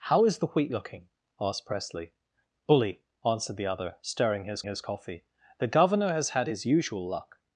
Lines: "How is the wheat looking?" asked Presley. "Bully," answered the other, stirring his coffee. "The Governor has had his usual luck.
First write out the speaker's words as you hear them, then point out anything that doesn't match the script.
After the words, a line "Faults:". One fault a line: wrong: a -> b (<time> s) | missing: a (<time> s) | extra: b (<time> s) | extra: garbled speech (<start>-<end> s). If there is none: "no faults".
"How is the wheat looking?" asked Presley. "Bully," answered the other, stirring his his coffee. "The Governor has had his usual luck.
Faults:
extra: his (4.6 s)